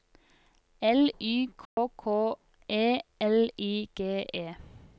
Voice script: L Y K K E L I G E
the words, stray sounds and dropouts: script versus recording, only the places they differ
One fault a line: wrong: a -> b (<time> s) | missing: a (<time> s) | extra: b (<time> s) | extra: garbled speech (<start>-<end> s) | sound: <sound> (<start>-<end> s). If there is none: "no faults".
sound: dropout (1.7-1.8 s)